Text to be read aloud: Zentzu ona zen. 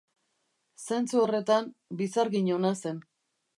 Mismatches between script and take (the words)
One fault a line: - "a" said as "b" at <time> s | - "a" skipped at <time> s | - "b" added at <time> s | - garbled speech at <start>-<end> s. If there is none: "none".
- "horretan bizargin" added at 1.2 s